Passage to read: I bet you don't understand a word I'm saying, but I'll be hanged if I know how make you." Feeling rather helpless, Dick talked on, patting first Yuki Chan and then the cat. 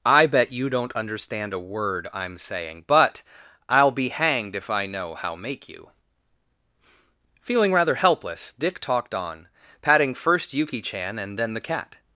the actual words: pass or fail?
pass